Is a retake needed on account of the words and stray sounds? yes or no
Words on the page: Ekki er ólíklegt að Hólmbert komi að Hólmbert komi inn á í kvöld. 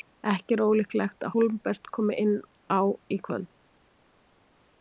yes